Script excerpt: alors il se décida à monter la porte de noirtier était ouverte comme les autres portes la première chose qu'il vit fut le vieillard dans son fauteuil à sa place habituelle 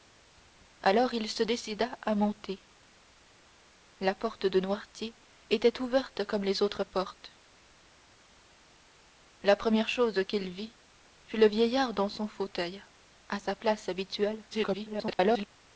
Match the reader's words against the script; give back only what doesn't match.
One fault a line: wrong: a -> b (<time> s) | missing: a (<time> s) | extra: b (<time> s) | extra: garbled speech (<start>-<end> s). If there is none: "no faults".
extra: garbled speech (14.5-15.5 s)